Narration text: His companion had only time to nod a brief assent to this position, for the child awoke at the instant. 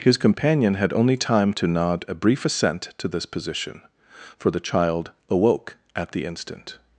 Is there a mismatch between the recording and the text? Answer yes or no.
no